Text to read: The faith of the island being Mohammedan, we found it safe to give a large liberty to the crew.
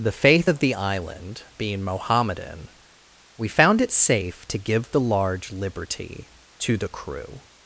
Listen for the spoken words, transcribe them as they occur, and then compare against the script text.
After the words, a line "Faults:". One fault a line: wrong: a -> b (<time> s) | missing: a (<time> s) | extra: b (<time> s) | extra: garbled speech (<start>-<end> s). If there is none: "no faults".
The faith of the island being Mohammedan, we found it safe to give the large liberty to the crew.
Faults:
wrong: a -> the (4.9 s)